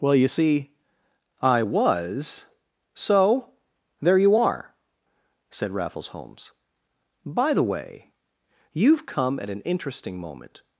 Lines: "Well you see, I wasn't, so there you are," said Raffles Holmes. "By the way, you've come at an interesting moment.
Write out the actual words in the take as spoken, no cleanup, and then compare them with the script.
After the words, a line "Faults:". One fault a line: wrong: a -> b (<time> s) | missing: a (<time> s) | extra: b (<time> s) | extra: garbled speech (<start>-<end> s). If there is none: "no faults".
"Well you see, I was, so there you are," said Raffles Holmes. "By the way, you've come at an interesting moment.
Faults:
wrong: wasn't -> was (1.6 s)